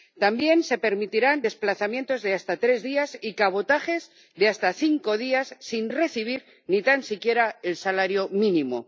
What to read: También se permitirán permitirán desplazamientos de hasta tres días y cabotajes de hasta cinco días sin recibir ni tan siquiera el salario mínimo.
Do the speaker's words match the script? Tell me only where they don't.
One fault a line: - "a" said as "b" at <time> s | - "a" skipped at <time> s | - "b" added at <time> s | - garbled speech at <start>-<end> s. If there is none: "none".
- "permitirán" skipped at 1.4 s